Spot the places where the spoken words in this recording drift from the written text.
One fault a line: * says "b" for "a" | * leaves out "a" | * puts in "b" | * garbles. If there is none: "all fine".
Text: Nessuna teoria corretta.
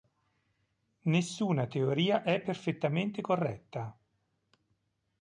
* puts in "è perfettamente"